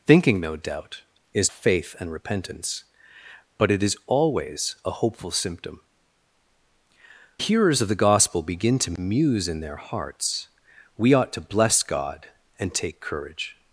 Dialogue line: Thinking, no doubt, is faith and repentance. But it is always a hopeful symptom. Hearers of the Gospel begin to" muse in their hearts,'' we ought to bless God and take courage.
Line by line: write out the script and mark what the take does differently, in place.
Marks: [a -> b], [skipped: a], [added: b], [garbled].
Thinking, no doubt, is faith and repentance. But it is always a hopeful symptom. Hearers of the Gospel begin to" muse in their hearts,'' we ought to bless God and take courage.